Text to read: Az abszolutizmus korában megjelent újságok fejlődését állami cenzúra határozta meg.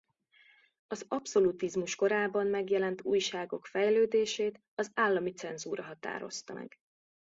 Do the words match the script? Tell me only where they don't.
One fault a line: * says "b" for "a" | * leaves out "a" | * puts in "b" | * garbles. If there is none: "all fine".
* puts in "az"